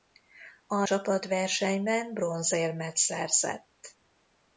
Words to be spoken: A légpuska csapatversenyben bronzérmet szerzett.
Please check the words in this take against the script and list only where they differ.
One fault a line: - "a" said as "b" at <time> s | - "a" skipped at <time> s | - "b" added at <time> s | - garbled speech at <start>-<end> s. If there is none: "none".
- "légpuska" skipped at 0.8 s